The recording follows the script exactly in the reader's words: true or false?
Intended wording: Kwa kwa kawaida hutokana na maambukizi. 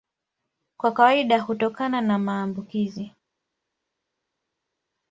false